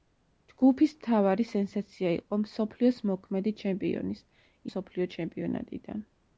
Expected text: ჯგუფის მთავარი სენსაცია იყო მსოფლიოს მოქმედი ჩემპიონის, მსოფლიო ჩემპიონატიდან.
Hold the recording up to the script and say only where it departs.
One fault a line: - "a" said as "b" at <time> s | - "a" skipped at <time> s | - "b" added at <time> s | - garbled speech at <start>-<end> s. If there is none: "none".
none